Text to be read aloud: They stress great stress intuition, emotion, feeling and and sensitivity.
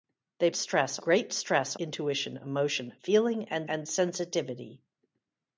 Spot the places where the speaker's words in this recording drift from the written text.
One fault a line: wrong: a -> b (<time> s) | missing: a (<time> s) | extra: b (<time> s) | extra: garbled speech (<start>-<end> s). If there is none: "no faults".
no faults